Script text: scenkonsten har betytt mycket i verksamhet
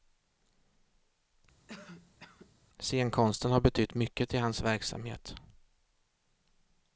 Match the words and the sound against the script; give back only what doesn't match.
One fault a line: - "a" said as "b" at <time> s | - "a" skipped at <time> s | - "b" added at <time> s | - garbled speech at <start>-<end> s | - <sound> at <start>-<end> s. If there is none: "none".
- cough at 1.7-2.5 s
- "hans" added at 4.4 s